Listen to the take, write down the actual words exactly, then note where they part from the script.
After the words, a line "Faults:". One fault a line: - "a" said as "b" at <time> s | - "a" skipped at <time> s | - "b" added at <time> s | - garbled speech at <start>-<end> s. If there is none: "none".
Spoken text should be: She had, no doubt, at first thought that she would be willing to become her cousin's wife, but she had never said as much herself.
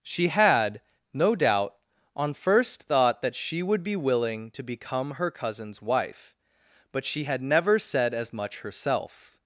She had, no doubt, on first thought that she would be willing to become her cousin's wife, but she had never said as much herself.
Faults:
- "at" said as "on" at 2.1 s